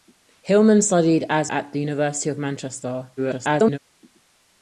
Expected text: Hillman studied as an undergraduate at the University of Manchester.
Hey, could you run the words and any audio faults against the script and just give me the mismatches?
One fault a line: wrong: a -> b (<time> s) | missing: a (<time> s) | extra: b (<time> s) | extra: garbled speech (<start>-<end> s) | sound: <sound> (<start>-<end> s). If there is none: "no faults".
missing: an undergraduate (1.5 s)
extra: garbled speech (3.2-3.8 s)